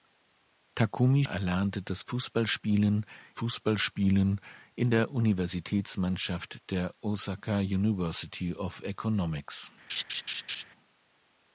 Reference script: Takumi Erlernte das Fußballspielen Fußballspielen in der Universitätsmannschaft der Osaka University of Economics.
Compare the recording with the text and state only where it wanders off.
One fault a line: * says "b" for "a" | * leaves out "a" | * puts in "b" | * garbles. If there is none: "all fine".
all fine